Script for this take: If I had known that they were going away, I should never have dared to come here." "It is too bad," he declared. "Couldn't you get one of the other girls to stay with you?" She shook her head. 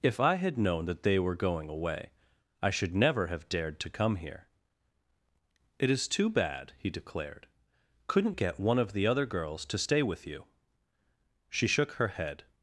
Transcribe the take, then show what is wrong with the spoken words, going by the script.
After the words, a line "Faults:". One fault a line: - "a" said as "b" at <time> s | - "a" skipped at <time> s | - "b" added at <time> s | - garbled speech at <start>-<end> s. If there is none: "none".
If I had known that they were going away, I should never have dared to come here." "It is too bad," he declared. "Couldn't get one of the other girls to stay with you?" She shook her head.
Faults:
- "you" skipped at 8.3 s